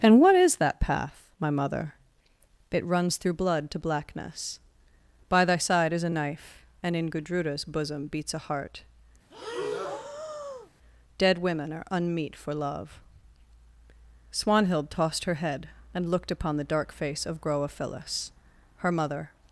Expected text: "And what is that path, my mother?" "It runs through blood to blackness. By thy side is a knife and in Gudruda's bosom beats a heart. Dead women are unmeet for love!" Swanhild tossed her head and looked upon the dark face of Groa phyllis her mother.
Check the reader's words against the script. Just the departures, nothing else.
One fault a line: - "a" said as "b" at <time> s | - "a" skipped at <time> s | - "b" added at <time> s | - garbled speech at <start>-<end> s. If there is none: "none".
none